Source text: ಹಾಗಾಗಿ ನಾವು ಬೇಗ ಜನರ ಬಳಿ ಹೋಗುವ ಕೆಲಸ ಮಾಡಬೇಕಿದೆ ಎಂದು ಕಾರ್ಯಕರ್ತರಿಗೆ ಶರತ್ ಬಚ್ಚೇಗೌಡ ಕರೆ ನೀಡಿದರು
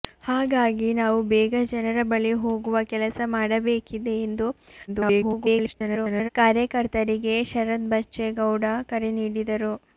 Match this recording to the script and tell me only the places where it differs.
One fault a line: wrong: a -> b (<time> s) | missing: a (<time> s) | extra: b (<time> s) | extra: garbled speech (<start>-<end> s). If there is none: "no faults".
extra: garbled speech (4.9-6.3 s)